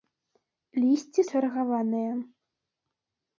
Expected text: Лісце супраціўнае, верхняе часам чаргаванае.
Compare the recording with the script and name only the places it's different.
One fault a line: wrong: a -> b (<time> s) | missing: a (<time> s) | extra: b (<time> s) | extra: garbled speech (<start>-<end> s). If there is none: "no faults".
missing: супраціўнае верхняе часам (1.2 s)